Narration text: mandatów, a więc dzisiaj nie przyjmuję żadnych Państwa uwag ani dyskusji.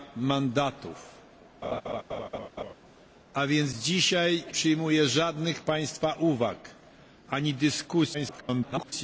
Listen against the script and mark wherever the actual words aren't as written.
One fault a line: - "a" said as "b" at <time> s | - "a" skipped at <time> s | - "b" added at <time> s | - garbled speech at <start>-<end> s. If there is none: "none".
- "nie" skipped at 4.4 s
- garbled speech at 8.1-8.9 s